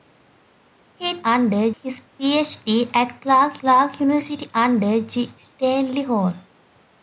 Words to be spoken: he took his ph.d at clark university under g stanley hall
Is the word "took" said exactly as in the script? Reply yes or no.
no